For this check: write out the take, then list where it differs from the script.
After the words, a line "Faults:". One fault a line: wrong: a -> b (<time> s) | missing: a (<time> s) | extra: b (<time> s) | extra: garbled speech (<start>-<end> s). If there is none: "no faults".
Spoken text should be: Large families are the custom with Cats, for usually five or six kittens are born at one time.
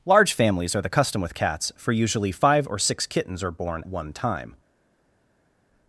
Large families are the custom with Cats, for usually five or six kittens are born one time.
Faults:
missing: at (3.8 s)